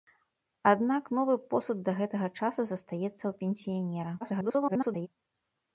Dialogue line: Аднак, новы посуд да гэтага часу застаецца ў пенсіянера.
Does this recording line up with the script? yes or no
no